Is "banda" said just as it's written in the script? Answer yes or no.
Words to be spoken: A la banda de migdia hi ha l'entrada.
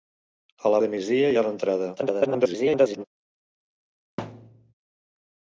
no